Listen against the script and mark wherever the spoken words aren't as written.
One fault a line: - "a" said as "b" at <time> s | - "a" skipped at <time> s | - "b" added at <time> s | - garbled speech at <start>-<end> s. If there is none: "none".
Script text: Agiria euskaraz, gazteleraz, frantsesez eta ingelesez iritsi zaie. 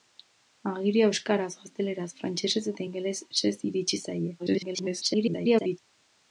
- garbled speech at 4.4-5.8 s